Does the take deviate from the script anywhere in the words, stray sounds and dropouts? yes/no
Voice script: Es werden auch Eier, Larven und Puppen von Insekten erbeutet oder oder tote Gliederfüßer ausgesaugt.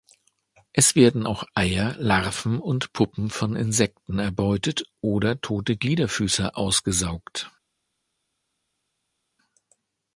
yes